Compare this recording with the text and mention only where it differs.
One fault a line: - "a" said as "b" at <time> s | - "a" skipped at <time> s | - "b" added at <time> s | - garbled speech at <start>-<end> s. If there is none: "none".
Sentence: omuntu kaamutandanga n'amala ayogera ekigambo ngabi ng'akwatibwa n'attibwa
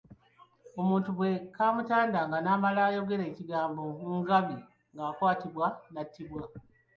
- "bwe" added at 1.2 s